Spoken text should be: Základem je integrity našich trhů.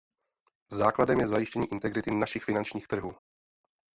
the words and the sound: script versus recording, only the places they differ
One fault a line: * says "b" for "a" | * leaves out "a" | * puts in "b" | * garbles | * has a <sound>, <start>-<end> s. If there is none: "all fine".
* puts in "zajištění"
* puts in "finančních"